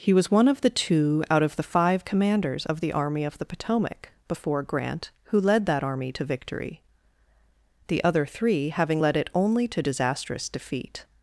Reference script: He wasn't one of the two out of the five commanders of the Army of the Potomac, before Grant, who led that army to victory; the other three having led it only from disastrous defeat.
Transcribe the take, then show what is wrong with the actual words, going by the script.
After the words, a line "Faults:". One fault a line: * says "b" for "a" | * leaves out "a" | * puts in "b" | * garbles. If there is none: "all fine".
He was one of the two out of the five commanders of the Army of the Potomac, before Grant, who led that army to victory; the other three having led it only to disastrous defeat.
Faults:
* says "was" for "wasn't"
* says "to" for "from"